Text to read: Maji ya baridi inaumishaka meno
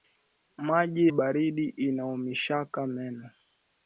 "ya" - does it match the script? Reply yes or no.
no